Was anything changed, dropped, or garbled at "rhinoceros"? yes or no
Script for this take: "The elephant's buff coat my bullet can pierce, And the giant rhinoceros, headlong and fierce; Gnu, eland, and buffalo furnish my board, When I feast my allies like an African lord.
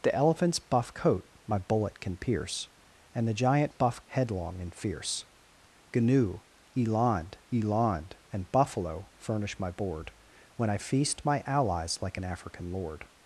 yes